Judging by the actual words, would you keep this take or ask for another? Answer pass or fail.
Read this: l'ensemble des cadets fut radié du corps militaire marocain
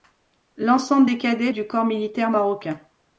fail